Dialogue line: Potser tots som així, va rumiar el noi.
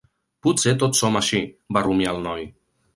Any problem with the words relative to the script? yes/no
no